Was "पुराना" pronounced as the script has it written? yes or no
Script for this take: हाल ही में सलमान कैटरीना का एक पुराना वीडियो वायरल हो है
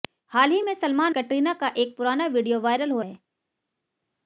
yes